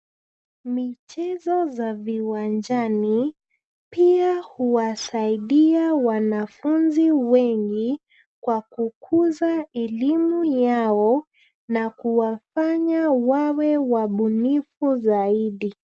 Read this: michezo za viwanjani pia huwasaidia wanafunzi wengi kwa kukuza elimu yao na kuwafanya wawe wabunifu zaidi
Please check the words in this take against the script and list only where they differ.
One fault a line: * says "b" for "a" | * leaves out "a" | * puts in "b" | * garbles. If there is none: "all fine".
all fine